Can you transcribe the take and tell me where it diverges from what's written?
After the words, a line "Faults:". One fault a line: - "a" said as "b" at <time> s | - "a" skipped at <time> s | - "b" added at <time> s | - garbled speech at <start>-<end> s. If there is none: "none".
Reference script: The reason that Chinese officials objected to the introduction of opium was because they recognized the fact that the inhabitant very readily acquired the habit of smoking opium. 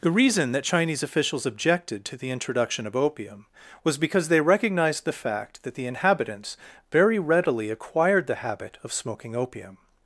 The reason that Chinese officials objected to the introduction of opium was because they recognized the fact that the inhabitants very readily acquired the habit of smoking opium.
Faults:
- "inhabitant" said as "inhabitants" at 5.8 s